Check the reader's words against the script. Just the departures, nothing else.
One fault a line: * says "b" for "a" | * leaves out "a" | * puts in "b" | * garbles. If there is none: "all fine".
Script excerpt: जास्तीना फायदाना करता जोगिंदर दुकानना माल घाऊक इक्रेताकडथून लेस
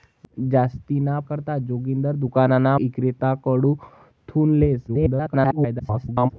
* leaves out "फायदाना"
* leaves out "माल घाऊक"
* garbles